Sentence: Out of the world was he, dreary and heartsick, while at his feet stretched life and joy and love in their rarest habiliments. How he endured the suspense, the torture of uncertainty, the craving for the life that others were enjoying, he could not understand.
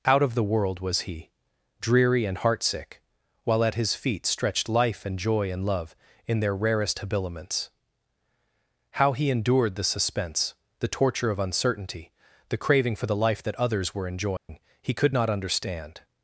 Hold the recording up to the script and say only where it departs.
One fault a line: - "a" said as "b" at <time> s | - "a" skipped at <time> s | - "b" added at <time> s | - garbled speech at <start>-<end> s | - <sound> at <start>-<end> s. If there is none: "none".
- dropout at 14.4-14.5 s